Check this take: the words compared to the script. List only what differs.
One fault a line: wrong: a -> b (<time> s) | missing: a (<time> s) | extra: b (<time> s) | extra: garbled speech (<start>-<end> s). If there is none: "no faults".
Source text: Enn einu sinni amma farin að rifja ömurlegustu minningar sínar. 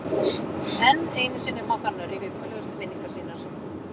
no faults